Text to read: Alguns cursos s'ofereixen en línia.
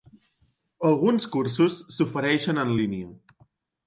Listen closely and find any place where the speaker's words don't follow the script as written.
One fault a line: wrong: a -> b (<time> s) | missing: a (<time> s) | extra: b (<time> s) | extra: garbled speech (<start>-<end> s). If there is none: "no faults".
no faults